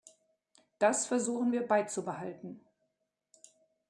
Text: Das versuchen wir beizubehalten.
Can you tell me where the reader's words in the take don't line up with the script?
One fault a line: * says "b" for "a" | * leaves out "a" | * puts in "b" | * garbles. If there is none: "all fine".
all fine